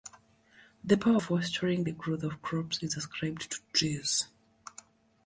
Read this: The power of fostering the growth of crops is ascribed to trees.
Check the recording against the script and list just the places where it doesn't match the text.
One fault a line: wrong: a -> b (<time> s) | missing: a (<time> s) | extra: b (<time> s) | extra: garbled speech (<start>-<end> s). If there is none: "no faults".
missing: of (1.2 s)